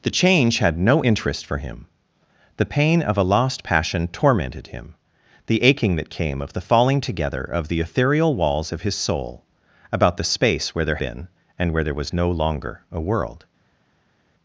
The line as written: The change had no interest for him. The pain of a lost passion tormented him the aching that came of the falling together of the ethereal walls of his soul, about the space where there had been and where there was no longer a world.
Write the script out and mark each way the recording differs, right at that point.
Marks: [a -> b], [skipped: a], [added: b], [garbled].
The change had no interest for him. The pain of a lost passion tormented him the aching that came of the falling together of the ethereal walls of his soul, about the space where there [skipped: had] been and where there was no longer a world.